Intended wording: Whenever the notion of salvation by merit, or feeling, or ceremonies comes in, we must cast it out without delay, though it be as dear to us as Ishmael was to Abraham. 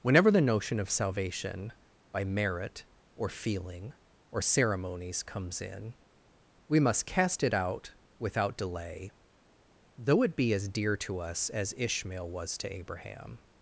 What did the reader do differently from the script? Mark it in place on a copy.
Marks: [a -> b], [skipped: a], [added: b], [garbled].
Whenever the notion of salvation by merit, or feeling, or ceremonies comes in, we must cast it out without delay, though it be as dear to us as Ishmael was to Abraham.